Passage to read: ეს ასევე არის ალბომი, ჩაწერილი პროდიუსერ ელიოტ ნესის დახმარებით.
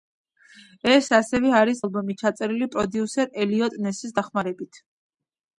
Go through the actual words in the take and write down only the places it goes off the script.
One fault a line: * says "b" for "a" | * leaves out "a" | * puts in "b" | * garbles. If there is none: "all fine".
all fine